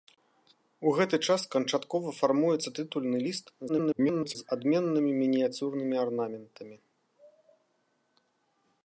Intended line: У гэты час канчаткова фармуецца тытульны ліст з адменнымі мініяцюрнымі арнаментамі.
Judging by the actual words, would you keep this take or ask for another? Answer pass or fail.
fail